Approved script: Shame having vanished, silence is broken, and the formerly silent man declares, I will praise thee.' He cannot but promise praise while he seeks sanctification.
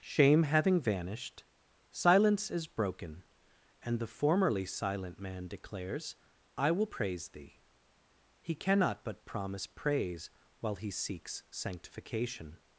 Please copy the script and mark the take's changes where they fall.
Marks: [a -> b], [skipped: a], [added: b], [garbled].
Shame having vanished, silence is broken, and the formerly silent man declares, I will praise thee.' He cannot but promise praise while he seeks sanctification.